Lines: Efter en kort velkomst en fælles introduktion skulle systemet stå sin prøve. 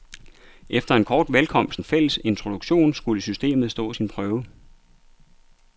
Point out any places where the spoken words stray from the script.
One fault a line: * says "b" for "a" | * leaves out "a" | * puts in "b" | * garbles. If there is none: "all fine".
all fine